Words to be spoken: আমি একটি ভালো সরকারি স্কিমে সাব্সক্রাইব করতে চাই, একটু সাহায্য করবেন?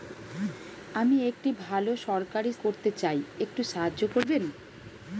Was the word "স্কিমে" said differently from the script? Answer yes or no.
yes